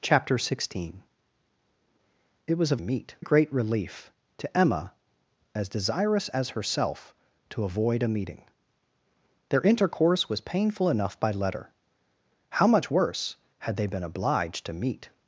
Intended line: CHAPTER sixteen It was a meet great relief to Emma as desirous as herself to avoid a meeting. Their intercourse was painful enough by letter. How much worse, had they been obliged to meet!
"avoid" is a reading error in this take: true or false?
false